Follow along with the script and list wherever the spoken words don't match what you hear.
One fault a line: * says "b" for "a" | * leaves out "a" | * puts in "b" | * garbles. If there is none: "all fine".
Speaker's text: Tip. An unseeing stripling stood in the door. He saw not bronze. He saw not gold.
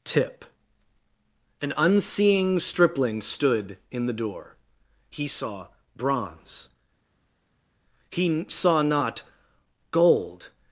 * leaves out "not"